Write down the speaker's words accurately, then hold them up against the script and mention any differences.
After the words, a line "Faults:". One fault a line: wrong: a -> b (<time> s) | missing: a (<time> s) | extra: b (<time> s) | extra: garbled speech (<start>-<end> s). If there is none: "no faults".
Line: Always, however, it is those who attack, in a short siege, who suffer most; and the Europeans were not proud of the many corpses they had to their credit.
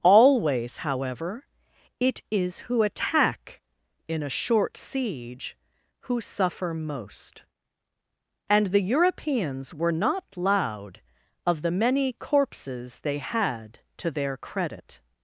Always, however, it is who attack, in a short siege, who suffer most; and the Europeans were not loud of the many corpses they had to their credit.
Faults:
missing: those (2.6 s)
wrong: proud -> loud (10.4 s)